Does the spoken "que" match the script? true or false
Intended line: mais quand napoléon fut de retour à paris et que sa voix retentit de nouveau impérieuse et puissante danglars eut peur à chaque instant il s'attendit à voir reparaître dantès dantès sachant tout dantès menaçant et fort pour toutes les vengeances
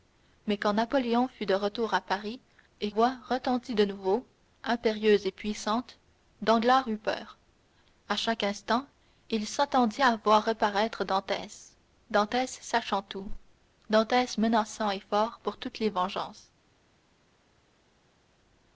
false